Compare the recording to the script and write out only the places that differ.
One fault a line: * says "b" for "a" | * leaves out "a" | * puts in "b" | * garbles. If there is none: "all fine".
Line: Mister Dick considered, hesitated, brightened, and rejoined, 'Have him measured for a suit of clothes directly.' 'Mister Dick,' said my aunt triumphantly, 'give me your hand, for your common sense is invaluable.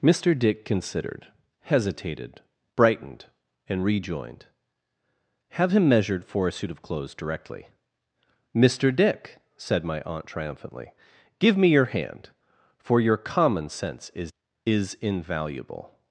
* puts in "is"